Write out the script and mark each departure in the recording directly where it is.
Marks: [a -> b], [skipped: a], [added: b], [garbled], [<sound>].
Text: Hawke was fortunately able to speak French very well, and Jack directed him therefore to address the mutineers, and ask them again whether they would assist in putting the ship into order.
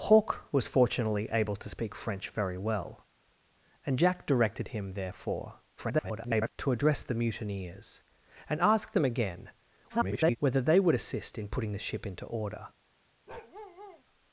Hawke was fortunately able to speak French very well, and Jack directed him therefore [garbled] to address the mutineers, and ask them again [garbled] whether they would assist in putting the ship into order. [bark]